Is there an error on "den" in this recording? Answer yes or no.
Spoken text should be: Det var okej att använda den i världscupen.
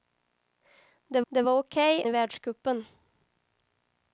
yes